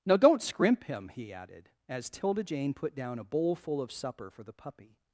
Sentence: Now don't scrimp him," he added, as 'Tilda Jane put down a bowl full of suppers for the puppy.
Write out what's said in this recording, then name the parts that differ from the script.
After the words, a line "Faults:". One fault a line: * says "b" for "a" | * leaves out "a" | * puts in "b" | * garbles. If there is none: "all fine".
Now don't scrimp him," he added, as 'Tilda Jane put down a bowl full of supper for the puppy.
Faults:
* says "supper" for "suppers"